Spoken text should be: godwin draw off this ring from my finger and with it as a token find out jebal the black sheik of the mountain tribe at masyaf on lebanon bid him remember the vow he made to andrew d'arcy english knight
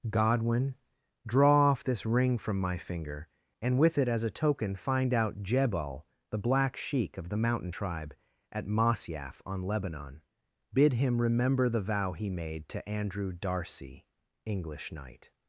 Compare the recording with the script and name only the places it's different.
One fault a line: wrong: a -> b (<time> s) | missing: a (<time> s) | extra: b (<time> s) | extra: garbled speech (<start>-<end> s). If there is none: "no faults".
no faults